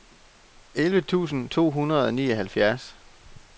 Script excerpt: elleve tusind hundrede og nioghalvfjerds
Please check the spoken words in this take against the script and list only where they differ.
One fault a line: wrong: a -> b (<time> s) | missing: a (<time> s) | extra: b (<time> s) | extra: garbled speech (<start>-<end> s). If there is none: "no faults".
extra: to (1.5 s)